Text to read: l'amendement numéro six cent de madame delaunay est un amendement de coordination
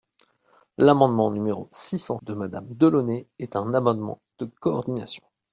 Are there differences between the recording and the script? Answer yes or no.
no